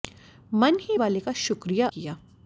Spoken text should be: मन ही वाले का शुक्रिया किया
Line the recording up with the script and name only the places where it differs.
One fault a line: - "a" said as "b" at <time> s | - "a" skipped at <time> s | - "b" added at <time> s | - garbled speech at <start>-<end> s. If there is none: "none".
none